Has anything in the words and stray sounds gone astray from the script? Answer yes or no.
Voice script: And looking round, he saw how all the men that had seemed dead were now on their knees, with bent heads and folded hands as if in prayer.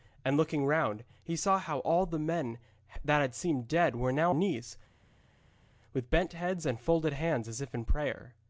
yes